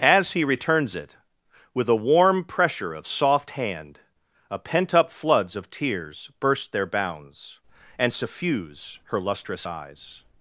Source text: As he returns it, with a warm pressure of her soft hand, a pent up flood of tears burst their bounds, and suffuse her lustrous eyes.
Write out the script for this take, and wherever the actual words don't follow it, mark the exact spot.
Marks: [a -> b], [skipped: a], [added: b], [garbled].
As he returns it, with a warm pressure of [skipped: her] soft hand, a pent up [flood -> floods] of tears burst their bounds, and suffuse her lustrous eyes.